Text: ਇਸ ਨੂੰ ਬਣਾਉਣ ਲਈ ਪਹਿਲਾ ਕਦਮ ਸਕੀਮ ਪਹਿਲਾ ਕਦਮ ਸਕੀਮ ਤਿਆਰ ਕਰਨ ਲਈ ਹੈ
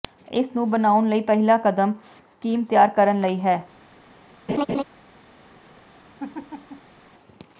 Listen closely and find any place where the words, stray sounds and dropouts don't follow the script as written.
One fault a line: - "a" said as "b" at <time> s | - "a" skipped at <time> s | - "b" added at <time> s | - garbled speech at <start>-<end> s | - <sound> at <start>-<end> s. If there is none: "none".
- "ਪਹਿਲਾ ਕਦਮ ਸਕੀਮ" skipped at 2.6 s
- laugh at 4.5-4.8 s
- laugh at 6.2-7.0 s